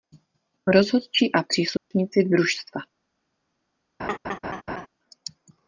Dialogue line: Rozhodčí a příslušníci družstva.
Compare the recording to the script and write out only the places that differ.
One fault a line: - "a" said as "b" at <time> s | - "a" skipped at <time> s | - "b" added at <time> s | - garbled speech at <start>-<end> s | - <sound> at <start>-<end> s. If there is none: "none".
- dropout at 1.8-1.9 s
- laugh at 4.0-4.9 s